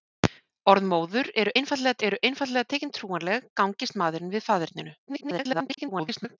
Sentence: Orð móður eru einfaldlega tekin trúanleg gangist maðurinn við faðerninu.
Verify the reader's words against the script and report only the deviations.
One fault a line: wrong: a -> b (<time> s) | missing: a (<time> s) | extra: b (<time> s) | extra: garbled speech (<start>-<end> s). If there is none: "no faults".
extra: eru einfaldlega (2.1 s)
extra: garbled speech (5.1-6.4 s)